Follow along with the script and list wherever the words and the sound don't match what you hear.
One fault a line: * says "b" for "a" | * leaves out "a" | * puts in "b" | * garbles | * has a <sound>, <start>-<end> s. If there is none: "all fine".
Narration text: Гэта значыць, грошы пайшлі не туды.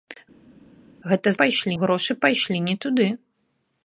* says "пайшлі" for "значыць"